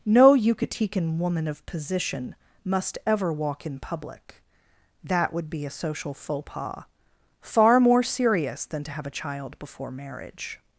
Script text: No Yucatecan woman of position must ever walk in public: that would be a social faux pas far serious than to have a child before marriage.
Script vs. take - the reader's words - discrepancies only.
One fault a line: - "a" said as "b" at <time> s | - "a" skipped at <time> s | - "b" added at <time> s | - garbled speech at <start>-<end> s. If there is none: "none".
- "more" added at 7.8 s